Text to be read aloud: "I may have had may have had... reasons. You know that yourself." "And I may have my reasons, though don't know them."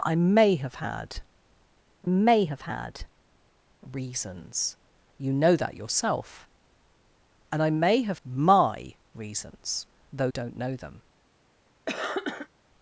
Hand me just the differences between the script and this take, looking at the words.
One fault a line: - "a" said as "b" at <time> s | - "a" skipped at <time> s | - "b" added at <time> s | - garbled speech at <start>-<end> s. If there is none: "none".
none